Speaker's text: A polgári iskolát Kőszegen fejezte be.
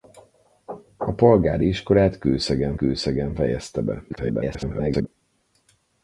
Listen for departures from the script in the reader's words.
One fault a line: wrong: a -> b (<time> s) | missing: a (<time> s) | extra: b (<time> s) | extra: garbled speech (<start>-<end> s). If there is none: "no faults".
extra: Kőszegen (2.7 s)
extra: garbled speech (4.1-5.1 s)